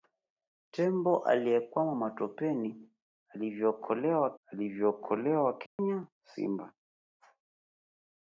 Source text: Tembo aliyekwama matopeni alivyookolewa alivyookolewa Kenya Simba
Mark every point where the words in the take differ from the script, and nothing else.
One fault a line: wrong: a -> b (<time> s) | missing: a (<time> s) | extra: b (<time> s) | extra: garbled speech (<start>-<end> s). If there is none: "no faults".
no faults